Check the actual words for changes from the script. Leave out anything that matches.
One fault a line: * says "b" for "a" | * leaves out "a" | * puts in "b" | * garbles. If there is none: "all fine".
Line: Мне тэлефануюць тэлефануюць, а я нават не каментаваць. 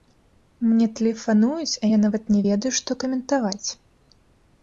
* leaves out "тэлефануюць"
* puts in "ведаю што"